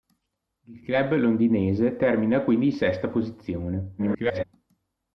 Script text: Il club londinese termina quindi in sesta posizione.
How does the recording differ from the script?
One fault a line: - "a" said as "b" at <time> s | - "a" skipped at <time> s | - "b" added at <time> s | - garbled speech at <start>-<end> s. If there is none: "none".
- garbled speech at 4.0-4.4 s